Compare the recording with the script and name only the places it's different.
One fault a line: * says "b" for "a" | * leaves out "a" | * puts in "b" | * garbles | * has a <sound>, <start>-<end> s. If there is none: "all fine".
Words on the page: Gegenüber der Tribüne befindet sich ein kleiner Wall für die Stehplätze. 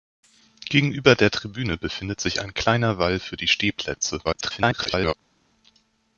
* garbles